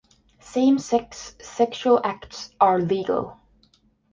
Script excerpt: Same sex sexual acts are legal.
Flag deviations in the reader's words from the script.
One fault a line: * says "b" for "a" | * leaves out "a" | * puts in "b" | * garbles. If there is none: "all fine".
all fine